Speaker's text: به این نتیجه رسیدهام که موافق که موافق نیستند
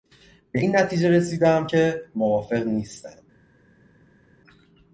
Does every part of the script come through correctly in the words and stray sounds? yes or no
no